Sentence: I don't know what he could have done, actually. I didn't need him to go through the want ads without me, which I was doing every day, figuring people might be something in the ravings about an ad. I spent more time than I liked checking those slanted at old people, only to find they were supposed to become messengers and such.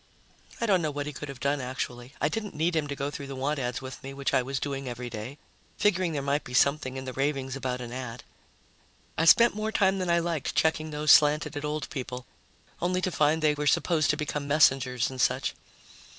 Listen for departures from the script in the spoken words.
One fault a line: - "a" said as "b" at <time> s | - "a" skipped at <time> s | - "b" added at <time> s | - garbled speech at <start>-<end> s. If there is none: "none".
- "without" said as "with" at 3.8 s
- "people" said as "there" at 6.1 s